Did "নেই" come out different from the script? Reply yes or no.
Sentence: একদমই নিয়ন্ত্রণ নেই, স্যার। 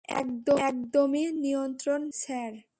yes